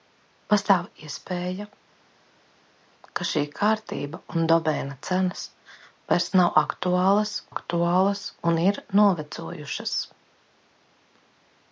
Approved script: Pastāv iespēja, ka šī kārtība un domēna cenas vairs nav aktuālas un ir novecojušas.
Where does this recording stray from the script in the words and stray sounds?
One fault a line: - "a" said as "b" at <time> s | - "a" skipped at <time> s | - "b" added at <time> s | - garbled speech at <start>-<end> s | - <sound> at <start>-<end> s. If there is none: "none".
- "aktuālas" added at 7.5 s